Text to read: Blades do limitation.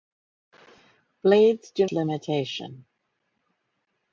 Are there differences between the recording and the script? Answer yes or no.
no